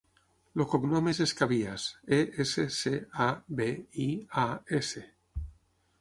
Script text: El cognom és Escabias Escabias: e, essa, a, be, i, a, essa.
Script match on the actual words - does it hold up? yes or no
no